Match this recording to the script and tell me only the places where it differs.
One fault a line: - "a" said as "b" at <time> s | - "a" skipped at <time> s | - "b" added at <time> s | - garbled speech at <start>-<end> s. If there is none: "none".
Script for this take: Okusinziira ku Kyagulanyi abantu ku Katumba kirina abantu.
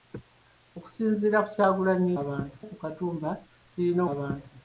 none